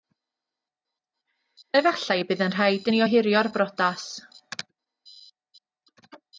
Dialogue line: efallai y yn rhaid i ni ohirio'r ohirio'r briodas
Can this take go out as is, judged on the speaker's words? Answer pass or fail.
fail